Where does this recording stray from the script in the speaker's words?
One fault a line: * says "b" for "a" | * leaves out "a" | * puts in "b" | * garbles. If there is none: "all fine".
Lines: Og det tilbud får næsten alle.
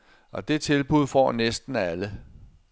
all fine